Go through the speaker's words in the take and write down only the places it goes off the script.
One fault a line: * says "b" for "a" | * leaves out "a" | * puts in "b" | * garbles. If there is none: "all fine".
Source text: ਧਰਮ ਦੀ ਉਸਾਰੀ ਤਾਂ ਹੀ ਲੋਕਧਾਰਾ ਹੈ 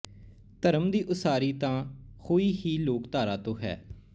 * puts in "ਹੋਈ"
* puts in "ਤੋਂ"